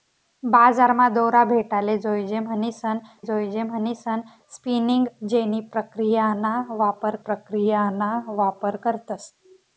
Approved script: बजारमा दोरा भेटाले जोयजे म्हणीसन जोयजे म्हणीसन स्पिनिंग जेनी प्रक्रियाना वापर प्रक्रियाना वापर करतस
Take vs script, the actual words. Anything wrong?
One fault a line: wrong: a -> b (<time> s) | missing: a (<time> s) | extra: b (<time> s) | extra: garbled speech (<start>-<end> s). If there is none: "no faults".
no faults